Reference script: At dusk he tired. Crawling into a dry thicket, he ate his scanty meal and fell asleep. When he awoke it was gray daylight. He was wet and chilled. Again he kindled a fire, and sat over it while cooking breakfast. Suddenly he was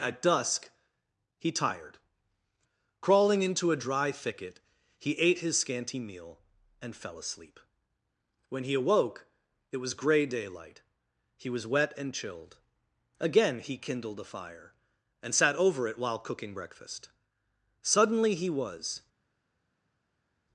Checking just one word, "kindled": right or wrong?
right